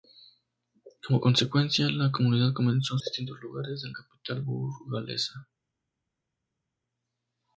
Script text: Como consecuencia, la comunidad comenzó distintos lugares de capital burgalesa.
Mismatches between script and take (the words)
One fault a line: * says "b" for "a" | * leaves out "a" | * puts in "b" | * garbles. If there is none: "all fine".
all fine